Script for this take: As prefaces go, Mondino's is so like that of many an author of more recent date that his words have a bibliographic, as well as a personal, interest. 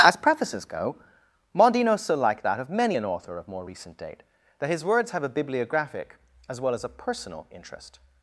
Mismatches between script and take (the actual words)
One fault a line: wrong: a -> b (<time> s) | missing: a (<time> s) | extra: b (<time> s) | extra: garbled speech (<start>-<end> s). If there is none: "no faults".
missing: is (2.0 s)